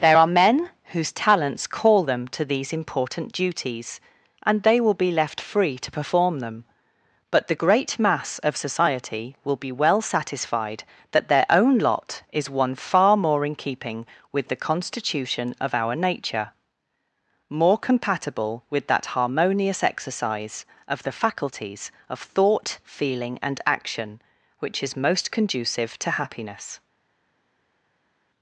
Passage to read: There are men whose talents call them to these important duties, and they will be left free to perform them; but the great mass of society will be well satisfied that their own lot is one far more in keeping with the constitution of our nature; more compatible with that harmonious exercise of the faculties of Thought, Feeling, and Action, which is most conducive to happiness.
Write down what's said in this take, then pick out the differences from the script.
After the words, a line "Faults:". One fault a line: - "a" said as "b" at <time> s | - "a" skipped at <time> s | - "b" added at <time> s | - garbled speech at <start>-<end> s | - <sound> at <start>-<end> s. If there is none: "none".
There are men whose talents call them to these important duties, and they will be left free to perform them; but the great mass of society will be well satisfied that their own lot is one far more in keeping with the constitution of our nature; more compatible with that harmonious exercise of the faculties of Thought, Feeling, and Action, which is most conducive to happiness.
Faults:
none